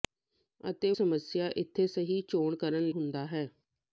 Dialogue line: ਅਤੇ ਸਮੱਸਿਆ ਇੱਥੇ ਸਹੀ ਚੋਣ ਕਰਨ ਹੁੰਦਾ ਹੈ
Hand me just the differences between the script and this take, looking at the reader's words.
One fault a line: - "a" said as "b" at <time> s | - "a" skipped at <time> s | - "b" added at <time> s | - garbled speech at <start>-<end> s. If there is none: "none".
none